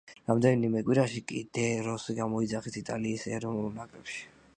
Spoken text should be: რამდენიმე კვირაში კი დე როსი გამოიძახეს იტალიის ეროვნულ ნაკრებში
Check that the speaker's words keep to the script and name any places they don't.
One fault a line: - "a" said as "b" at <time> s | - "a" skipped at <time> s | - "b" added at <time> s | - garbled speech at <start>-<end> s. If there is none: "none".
none